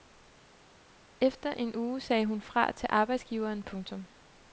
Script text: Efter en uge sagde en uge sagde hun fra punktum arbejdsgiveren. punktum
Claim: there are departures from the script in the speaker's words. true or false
true